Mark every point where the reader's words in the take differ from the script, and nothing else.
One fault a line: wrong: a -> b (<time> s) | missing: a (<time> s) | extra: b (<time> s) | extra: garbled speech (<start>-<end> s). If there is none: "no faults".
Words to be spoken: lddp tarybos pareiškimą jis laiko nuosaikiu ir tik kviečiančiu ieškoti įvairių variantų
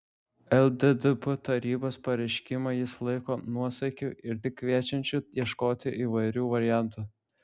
no faults